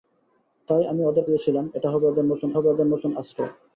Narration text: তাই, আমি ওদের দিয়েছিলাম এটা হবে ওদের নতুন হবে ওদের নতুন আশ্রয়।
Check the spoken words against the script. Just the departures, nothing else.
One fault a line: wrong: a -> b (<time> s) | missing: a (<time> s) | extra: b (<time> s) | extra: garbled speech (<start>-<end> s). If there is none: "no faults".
no faults